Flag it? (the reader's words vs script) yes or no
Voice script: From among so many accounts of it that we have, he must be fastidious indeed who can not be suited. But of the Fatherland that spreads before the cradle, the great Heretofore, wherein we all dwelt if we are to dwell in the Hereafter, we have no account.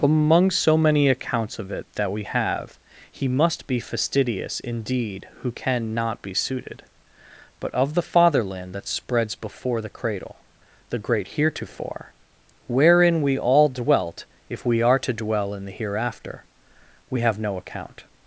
yes